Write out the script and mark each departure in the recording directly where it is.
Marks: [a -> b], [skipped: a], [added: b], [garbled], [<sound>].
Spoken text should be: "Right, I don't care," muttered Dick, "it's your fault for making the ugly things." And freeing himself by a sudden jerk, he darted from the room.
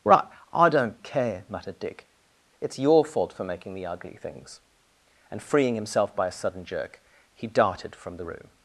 "Right, I don't care," muttered Dick, "it's your fault for making the ugly things." And freeing himself by a sudden jerk, he darted from the room.